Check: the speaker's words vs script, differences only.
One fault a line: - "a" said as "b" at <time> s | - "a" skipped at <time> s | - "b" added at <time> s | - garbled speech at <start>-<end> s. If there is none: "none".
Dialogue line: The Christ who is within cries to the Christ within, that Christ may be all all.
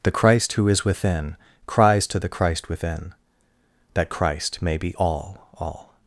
none